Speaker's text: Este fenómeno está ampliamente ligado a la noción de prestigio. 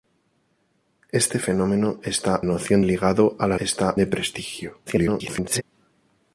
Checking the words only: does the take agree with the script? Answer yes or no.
no